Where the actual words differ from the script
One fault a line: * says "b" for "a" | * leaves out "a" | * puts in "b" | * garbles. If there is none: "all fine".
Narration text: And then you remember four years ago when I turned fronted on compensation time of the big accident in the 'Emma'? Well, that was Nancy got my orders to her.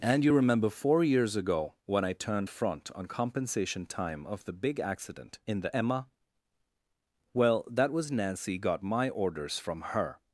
* leaves out "then"
* says "front" for "fronted"
* says "from" for "to"